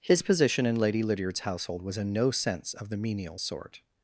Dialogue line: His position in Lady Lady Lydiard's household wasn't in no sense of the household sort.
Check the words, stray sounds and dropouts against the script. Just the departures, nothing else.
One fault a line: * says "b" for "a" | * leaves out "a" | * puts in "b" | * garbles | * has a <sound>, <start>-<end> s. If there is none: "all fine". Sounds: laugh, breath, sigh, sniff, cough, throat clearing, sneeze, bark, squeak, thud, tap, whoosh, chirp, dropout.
* leaves out "Lady"
* says "was" for "wasn't"
* says "menial" for "household"